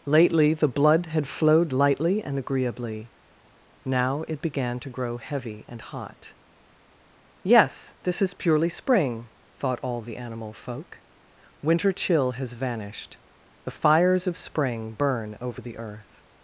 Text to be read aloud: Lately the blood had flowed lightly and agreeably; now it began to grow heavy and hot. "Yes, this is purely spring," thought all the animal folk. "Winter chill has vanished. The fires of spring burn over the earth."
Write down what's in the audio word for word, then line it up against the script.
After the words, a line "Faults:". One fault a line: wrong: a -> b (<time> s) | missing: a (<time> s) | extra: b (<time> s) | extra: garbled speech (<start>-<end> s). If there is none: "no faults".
Lately the blood had flowed lightly and agreeably; now it began to grow heavy and hot. "Yes, this is purely spring," thought all the animal folk. "Winter chill has vanished. The fires of spring burn over the earth."
Faults:
no faults